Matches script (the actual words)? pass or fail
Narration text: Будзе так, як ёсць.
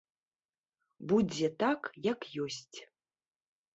pass